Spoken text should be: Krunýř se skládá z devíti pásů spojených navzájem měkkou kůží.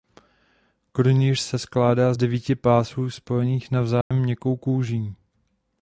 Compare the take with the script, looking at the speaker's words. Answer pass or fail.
pass